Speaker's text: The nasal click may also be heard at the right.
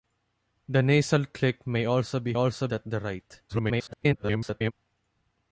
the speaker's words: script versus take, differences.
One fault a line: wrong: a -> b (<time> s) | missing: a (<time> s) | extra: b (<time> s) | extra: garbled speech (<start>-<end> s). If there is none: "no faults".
wrong: heard -> also (2.3 s)
extra: garbled speech (3.5-4.7 s)